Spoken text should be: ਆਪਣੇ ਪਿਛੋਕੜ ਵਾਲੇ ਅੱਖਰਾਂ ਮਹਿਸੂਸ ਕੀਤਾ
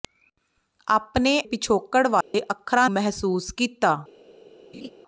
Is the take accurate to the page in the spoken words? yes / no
yes